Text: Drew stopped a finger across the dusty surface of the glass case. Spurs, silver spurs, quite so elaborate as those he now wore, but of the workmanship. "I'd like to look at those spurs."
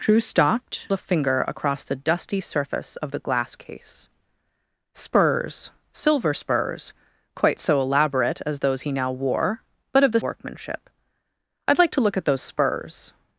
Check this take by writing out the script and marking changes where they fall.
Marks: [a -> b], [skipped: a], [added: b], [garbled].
Drew stopped a finger across the dusty surface of the glass case. Spurs, silver spurs, quite so elaborate as those he now wore, but of the workmanship. "I'd like to look at those spurs."